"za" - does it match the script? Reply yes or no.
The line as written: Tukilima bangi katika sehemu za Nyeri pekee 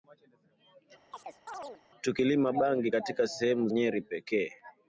no